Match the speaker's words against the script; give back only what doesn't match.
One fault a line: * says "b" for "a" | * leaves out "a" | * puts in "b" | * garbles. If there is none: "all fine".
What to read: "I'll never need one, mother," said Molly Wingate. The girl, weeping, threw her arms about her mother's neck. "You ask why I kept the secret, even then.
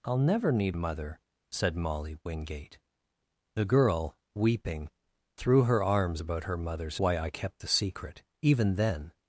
* leaves out "one"
* leaves out "neck You ask"